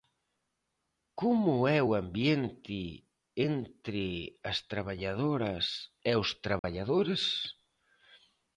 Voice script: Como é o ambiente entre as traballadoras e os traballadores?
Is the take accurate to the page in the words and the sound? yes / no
no